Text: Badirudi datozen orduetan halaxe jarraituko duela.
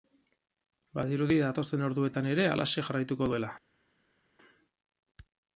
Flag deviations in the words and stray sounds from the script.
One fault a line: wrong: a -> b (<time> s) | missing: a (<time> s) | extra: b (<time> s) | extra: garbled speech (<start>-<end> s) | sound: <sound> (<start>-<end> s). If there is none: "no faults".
extra: ere (2.3 s)